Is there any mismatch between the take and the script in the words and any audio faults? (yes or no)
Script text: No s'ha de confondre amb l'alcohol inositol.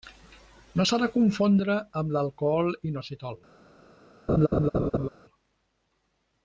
yes